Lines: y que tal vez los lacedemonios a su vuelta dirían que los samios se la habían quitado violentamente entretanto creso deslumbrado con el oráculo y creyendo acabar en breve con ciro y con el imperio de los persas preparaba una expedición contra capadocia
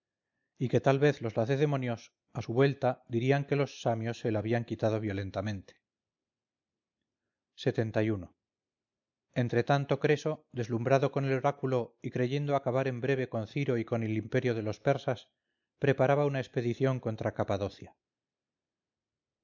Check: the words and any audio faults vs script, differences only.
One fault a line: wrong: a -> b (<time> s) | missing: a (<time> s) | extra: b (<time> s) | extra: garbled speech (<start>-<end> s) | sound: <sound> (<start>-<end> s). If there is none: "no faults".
no faults